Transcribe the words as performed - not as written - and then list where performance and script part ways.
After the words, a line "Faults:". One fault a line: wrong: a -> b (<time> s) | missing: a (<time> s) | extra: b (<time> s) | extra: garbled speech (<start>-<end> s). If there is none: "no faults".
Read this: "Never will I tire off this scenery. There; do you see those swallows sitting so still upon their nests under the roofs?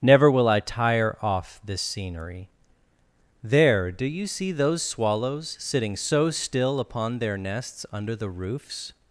"Never will I tire off this scenery. There; do you see those swallows sitting so still upon their nests under the roofs?
Faults:
no faults